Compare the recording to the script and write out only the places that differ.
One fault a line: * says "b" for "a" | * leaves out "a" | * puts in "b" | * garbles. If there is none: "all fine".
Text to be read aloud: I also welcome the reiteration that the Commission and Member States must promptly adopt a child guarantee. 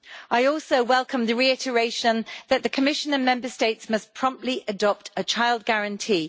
all fine